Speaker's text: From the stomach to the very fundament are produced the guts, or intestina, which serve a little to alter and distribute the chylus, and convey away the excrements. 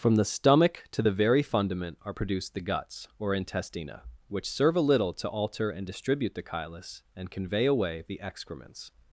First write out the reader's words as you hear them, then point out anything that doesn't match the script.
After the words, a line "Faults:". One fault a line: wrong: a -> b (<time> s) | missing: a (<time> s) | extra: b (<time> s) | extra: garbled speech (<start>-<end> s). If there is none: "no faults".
From the stomach to the very fundament are produced the guts, or intestina, which serve a little to alter and distribute the chylus, and convey away the excrements.
Faults:
no faults